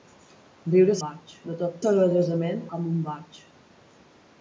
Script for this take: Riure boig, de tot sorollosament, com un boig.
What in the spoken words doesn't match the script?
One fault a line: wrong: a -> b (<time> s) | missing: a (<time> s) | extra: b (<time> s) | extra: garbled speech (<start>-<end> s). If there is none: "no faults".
no faults